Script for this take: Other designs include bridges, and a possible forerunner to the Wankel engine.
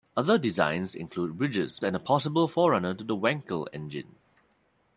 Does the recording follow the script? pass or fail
pass